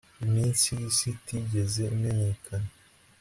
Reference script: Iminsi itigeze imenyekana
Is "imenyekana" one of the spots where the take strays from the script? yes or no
no